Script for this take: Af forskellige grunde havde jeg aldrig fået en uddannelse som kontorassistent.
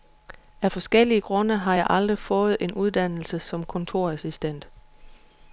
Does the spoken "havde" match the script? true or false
false